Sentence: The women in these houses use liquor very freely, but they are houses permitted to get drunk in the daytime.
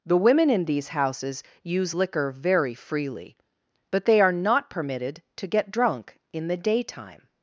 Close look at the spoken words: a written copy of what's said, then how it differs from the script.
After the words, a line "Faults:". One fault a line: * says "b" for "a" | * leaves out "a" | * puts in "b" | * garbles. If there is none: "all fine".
The women in these houses use liquor very freely, but they are not permitted to get drunk in the daytime.
Faults:
* says "not" for "houses"